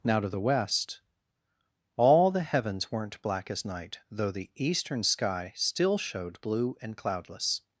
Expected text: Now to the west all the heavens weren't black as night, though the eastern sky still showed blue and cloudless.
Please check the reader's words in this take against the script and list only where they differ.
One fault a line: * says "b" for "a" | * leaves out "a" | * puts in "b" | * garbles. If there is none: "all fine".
all fine